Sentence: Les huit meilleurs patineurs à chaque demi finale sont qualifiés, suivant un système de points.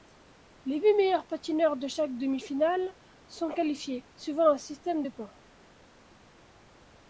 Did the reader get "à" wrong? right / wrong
wrong